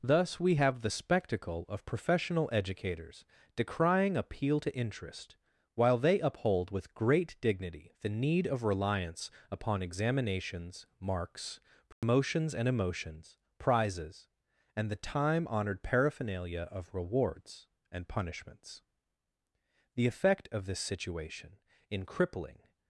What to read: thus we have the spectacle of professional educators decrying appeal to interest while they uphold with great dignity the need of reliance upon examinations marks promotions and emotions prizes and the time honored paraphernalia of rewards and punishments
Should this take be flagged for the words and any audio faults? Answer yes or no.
yes